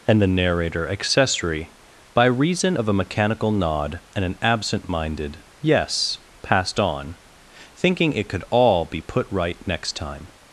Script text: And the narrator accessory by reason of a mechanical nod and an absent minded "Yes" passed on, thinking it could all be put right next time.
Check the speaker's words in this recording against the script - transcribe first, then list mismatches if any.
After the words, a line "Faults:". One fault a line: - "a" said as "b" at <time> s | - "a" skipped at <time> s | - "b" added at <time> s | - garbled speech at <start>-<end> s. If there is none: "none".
And the narrator accessory by reason of a mechanical nod and an absent minded "Yes" passed on, thinking it could all be put right next time.
Faults:
none